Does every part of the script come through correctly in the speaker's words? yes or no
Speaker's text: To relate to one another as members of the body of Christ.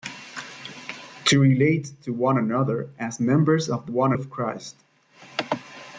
no